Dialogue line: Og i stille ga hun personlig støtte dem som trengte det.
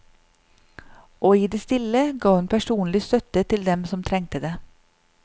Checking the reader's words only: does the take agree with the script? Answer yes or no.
no